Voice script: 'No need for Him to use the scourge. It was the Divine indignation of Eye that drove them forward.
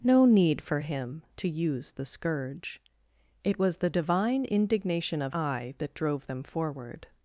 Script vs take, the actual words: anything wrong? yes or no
no